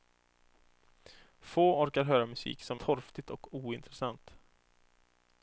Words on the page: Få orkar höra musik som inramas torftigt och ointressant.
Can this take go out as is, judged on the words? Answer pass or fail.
fail